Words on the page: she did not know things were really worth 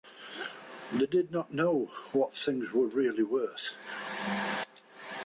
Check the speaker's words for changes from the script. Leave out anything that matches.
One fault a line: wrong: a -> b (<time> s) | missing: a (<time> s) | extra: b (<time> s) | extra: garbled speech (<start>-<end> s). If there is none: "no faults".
wrong: she -> they (0.9 s)
extra: what (2.1 s)